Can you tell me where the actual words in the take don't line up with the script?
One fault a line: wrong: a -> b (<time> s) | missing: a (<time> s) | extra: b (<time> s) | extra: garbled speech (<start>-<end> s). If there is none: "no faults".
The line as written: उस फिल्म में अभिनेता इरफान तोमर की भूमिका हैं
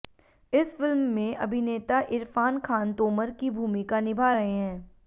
wrong: उस -> इस (0.5 s)
extra: खान (2.6 s)
extra: निभा रहे (4.0 s)